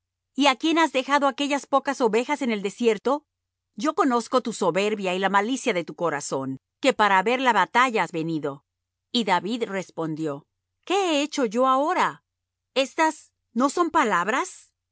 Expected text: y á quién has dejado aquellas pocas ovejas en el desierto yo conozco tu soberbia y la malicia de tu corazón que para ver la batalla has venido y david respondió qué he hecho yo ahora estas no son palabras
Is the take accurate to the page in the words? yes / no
yes